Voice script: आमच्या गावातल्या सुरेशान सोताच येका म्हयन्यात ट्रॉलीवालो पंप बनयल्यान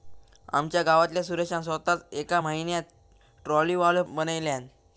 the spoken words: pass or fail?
fail